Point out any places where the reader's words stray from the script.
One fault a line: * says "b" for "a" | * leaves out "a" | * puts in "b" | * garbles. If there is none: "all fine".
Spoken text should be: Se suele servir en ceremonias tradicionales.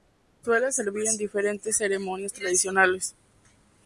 * puts in "diferentes"